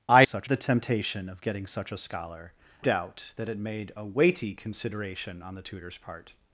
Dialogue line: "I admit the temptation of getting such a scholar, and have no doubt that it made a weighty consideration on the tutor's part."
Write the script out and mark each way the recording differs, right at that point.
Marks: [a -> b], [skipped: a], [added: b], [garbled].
"I [admit -> such] the temptation of getting such a scholar, [skipped: and have no] doubt that it made a weighty consideration on the tutor's part."